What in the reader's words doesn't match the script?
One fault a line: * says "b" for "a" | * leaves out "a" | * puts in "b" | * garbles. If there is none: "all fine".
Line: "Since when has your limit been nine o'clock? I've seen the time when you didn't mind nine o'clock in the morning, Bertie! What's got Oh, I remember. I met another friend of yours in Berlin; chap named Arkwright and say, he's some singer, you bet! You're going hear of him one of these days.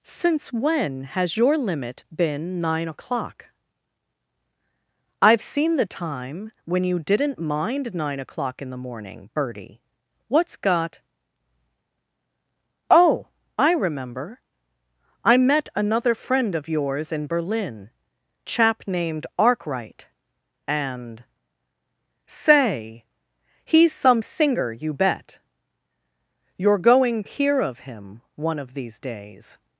all fine